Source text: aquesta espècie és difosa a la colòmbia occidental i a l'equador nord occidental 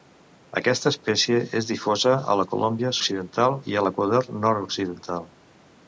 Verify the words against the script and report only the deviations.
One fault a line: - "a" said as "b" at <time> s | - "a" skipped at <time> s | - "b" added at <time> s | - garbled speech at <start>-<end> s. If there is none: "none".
none